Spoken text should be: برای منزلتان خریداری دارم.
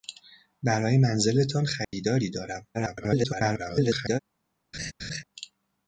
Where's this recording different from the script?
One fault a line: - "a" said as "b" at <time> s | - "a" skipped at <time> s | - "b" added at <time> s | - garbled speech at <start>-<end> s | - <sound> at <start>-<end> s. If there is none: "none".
- dropout at 1.8-1.9 s
- garbled speech at 2.7-4.2 s
- laugh at 4.7-5.2 s